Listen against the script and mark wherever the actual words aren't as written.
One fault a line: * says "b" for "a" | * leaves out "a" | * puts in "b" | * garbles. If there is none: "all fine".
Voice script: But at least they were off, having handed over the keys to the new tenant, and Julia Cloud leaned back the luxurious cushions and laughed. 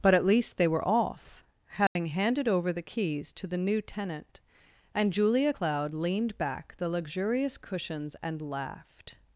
all fine